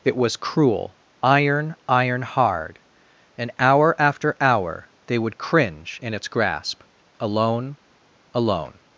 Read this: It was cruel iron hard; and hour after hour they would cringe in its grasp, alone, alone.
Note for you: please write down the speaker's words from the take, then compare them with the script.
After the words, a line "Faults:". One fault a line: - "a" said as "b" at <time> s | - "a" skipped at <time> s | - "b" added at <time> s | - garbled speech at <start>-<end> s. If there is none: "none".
It was cruel iron iron hard; and hour after hour they would cringe in its grasp, alone, alone.
Faults:
- "iron" added at 1.9 s